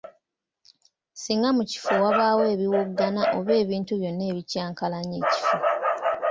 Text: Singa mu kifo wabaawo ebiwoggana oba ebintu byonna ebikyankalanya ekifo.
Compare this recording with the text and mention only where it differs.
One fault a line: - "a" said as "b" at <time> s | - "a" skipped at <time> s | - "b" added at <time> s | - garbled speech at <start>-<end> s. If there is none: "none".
none